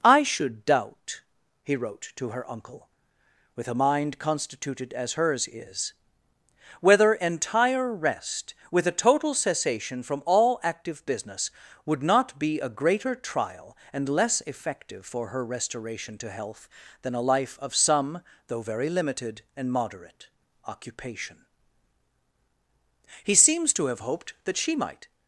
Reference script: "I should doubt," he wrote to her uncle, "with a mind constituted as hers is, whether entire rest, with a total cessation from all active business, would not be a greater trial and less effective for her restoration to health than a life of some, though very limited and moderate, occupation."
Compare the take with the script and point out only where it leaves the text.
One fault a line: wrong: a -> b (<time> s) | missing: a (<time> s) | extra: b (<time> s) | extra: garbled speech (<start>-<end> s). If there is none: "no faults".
extra: He seems to have hoped that she might (23.2 s)